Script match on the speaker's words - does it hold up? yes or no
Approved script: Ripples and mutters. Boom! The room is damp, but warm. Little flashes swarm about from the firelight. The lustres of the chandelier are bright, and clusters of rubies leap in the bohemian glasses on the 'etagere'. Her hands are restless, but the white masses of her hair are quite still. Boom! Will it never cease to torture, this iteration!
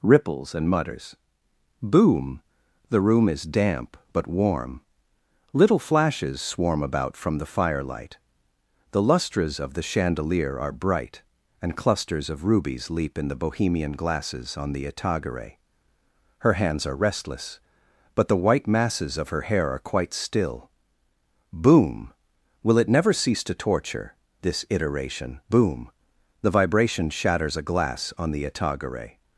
no